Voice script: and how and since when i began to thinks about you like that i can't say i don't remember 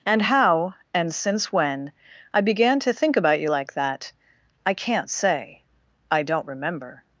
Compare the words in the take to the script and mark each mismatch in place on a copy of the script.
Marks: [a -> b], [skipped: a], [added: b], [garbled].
and how and since when i began to [thinks -> think] about you like that i can't say i don't remember